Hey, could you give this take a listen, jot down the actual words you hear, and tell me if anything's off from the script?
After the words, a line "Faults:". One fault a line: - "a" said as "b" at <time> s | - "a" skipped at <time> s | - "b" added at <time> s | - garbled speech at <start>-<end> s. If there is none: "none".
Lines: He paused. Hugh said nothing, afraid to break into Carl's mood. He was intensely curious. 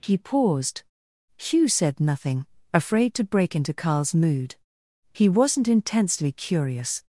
He paused. Hugh said nothing, afraid to break into Carl's mood. He wasn't intensely curious.
Faults:
- "was" said as "wasn't" at 5.3 s